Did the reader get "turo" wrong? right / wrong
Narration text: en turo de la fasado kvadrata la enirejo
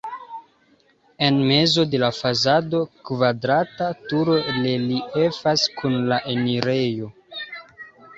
wrong